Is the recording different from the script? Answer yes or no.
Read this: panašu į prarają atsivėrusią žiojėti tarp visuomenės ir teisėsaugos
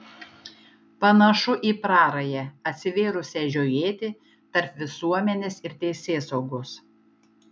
no